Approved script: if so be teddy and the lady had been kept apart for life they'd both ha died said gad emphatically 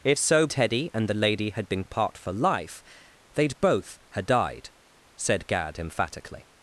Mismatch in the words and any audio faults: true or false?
true